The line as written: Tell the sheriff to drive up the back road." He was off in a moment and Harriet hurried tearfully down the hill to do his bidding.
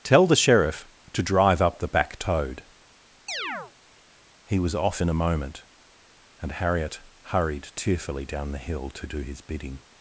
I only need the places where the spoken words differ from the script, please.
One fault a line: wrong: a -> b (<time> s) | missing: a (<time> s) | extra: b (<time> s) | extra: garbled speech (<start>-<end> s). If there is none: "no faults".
wrong: road -> toad (2.2 s)